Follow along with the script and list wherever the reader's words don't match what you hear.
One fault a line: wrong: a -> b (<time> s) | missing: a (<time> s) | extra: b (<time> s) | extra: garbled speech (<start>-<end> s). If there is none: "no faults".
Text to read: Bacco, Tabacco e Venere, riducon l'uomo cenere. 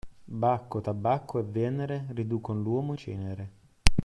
no faults